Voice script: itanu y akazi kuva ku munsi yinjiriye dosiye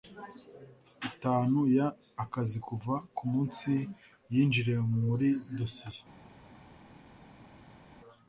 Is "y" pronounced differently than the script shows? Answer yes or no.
no